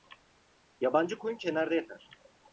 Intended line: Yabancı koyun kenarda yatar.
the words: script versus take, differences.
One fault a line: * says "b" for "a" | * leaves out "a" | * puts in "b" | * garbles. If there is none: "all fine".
all fine